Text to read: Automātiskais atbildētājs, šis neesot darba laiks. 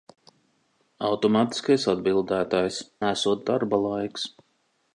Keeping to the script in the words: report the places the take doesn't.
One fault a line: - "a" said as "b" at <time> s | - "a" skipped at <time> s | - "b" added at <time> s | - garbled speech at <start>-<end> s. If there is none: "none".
- "šis" skipped at 2.8 s